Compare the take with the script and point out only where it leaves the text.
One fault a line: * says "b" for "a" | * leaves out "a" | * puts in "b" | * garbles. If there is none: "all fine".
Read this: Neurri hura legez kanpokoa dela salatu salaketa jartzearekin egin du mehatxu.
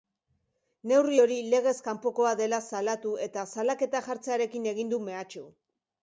* says "hori" for "hura"
* puts in "eta"